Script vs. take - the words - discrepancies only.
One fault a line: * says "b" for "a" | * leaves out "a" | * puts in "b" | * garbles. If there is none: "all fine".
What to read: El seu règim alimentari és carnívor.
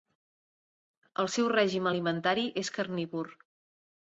all fine